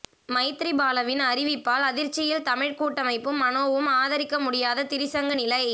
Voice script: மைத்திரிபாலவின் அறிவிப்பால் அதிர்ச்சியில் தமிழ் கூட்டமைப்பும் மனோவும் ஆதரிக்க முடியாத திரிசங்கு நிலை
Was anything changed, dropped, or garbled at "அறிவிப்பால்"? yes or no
no